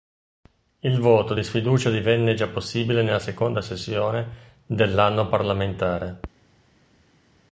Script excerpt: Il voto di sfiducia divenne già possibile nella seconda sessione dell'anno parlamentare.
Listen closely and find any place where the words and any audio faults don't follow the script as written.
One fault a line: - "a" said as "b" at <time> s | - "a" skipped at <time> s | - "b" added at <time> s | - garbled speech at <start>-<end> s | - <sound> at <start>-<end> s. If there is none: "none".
none